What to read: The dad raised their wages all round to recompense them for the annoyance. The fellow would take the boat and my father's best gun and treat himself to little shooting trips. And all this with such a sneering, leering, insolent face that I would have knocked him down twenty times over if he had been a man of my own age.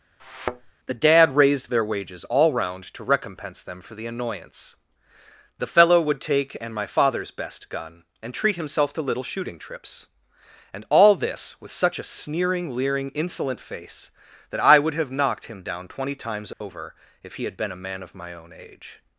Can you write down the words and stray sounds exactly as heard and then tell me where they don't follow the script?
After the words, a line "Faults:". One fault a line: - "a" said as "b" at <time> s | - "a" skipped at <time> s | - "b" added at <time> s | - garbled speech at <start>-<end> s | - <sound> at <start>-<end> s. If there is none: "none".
The dad raised their wages all round to recompense them for the annoyance. The fellow would take and my father's best gun and treat himself to little shooting trips. And all this with such a sneering, leering, insolent face that I would have knocked him down twenty times over if he had been a man of my own age.
Faults:
- thud at 0.2-0.7 s
- "the boat" skipped at 6.6 s
- dropout at 16.5-16.6 s